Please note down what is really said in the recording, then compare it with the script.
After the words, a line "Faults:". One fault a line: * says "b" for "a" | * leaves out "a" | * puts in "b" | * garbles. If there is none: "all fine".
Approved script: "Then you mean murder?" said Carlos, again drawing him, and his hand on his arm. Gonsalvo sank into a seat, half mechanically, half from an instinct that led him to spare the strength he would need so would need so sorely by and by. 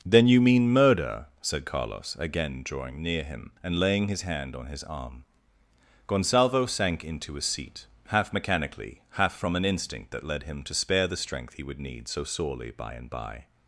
"Then you mean murder?" said Carlos, again drawing near him, and laying his hand on his arm. Gonsalvo sank into a seat, half mechanically, half from an instinct that led him to spare the strength he would need so sorely by and by.
Faults:
* puts in "near"
* puts in "laying"
* leaves out "would need so"